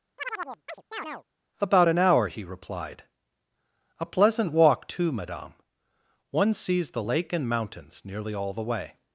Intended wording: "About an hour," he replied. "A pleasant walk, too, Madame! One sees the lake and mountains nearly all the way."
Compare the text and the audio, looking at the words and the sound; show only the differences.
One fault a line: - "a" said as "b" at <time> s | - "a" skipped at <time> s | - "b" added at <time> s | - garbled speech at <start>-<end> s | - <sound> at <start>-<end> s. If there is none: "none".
- chirp at 0.2-1.2 s